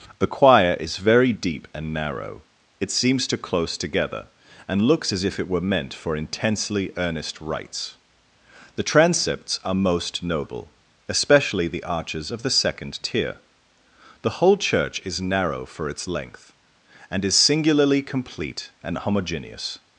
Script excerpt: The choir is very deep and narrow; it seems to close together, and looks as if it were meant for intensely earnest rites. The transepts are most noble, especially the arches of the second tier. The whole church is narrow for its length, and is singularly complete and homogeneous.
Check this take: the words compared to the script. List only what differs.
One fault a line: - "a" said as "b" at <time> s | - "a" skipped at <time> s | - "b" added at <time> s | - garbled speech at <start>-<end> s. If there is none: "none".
none